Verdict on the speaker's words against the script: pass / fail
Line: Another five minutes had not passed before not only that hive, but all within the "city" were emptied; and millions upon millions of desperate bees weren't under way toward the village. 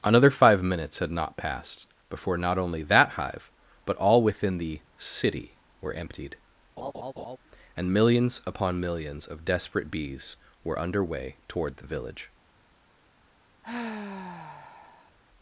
fail